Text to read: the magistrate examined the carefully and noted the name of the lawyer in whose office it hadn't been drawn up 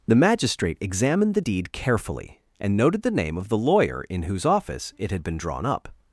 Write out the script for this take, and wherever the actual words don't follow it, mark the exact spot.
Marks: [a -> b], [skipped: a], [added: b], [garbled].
the magistrate examined the [added: deed] carefully and noted the name of the lawyer in whose office it [hadn't -> had] been drawn up